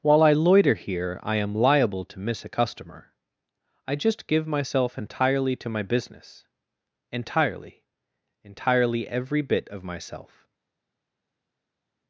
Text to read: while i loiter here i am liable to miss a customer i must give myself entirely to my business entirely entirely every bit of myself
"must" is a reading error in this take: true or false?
true